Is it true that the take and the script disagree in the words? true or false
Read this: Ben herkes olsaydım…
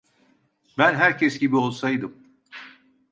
true